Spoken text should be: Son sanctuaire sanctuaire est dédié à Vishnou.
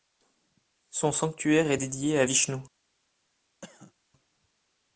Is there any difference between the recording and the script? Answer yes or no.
yes